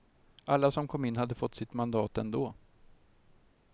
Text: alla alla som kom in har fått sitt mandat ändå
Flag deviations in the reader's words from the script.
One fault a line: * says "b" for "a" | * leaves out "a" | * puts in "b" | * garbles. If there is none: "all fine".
* leaves out "alla"
* says "hade" for "har"